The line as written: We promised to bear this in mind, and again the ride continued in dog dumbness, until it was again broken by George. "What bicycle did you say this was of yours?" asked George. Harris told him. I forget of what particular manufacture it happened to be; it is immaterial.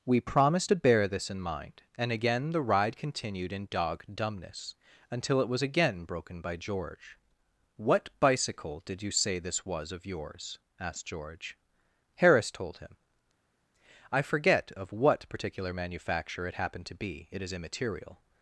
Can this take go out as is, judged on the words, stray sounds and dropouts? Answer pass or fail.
pass